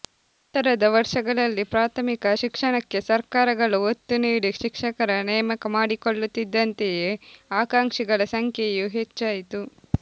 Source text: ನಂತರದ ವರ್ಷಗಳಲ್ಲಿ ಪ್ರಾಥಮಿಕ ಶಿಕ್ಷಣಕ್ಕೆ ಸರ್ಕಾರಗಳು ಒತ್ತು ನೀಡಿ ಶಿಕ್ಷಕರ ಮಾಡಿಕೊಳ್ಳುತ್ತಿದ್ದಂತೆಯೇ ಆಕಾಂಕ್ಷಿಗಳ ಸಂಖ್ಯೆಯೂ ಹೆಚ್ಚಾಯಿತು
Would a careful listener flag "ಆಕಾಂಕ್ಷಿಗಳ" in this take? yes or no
no